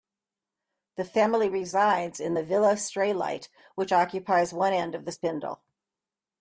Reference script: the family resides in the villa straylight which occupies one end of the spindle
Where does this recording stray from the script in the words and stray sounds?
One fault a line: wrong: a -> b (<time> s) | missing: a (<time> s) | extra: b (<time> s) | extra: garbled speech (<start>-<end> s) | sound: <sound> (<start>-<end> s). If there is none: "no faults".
no faults